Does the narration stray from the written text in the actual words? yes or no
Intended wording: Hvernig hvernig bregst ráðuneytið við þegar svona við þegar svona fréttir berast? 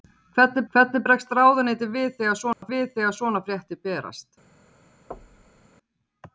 no